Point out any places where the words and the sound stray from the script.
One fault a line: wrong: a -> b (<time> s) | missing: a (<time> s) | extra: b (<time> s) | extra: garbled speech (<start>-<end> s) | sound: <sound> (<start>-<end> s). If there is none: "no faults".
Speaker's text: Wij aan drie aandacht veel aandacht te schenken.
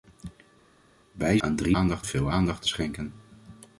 no faults